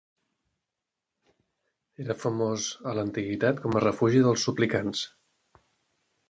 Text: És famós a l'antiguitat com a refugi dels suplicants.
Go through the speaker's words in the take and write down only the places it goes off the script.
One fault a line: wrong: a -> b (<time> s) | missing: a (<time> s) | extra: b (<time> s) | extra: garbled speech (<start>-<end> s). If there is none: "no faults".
wrong: És -> Era (2.0 s)